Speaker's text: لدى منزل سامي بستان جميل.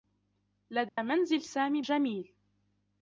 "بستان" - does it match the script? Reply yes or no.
no